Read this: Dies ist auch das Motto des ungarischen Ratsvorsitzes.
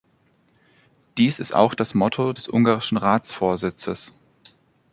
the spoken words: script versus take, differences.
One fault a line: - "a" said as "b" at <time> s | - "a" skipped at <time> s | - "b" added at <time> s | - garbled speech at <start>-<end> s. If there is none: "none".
none